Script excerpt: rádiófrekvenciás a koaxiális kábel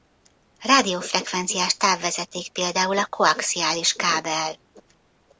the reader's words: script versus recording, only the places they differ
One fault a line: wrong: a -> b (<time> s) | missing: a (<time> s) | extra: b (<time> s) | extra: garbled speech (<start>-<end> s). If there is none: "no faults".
extra: távvezeték például (1.8 s)